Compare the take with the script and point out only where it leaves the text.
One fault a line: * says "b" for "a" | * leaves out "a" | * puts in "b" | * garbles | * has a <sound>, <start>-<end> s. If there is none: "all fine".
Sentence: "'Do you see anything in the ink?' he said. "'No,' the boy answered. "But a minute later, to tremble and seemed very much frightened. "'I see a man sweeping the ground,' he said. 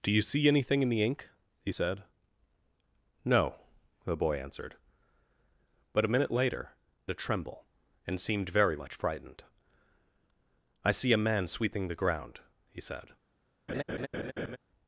* has a laugh, 13.7-14.6 s